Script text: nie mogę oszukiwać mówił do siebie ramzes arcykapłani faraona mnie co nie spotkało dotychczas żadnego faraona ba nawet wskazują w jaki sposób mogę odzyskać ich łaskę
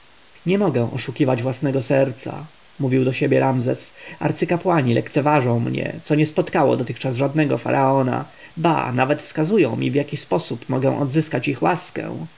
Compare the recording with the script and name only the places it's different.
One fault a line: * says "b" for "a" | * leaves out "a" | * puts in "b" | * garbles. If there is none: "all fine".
* puts in "własnego serca"
* says "lekceważą" for "faraona"
* puts in "mi"